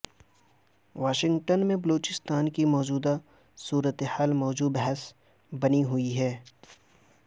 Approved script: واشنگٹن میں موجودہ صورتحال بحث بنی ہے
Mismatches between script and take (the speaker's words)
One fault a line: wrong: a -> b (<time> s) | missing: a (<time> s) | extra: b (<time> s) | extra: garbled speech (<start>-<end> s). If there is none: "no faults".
extra: بلوچستان کی (1.8 s)
extra: موضوع (4.3 s)
extra: ہوئی (5.8 s)